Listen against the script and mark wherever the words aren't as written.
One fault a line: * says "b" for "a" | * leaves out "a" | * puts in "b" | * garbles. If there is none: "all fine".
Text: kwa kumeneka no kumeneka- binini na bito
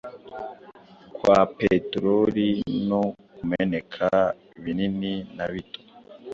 * says "peteroli" for "kumeneka"